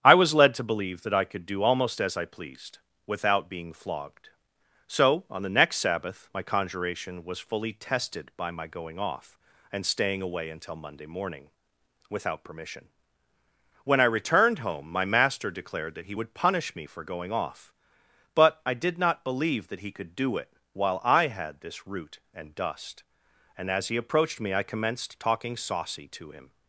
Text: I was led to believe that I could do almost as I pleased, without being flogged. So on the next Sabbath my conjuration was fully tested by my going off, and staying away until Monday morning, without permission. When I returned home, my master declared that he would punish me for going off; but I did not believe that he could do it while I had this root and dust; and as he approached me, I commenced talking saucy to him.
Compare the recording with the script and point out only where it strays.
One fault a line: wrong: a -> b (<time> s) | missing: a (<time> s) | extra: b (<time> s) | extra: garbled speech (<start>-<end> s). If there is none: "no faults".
no faults